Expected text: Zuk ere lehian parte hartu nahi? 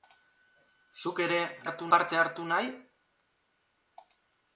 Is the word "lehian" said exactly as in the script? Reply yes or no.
no